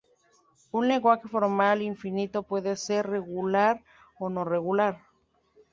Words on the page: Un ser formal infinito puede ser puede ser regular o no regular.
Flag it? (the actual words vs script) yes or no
yes